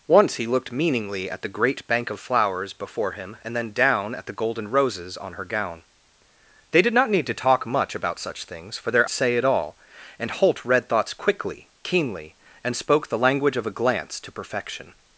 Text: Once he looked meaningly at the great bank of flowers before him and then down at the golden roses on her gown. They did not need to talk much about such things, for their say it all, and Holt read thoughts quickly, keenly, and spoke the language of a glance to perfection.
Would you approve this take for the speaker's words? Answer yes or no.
yes